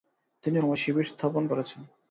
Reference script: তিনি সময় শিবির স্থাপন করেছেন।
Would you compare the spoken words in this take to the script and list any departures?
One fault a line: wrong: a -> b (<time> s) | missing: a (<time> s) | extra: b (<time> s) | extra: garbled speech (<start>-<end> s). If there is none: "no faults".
no faults